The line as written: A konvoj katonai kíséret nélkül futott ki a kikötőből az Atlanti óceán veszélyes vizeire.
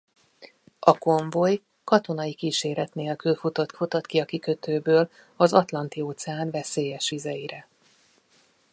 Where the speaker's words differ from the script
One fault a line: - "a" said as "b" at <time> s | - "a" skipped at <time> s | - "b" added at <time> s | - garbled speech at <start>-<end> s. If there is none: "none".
- "futott" added at 3.7 s